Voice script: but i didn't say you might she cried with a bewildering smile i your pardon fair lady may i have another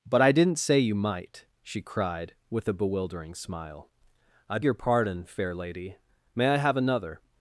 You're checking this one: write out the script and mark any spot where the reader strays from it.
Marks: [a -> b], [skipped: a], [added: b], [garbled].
but i didn't say you might she cried with a bewildering smile i your pardon fair lady may i have another